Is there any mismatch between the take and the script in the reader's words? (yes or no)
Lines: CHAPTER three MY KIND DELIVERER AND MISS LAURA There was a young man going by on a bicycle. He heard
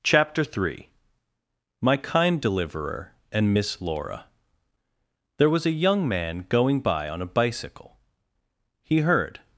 no